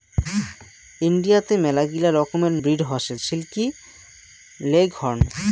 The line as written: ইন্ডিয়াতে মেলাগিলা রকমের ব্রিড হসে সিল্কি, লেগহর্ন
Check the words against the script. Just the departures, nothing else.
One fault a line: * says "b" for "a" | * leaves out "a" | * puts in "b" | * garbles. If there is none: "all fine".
all fine